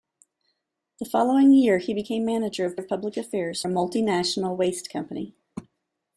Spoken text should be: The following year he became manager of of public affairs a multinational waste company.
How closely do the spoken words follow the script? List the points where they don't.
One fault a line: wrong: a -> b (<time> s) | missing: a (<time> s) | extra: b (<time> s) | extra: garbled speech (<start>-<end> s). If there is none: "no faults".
no faults